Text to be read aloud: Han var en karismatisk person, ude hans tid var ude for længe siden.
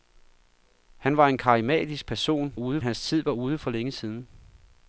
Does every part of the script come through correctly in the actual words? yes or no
yes